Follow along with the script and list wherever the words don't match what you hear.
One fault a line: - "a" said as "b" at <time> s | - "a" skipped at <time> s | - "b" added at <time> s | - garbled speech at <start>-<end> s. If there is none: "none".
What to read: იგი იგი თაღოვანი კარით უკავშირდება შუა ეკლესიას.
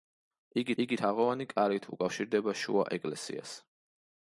none